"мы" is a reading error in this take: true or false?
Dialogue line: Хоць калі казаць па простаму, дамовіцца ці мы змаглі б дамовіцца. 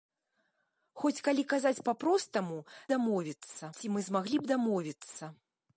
false